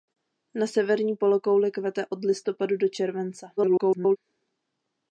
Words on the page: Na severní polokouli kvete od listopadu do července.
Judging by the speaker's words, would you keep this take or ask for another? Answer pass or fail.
fail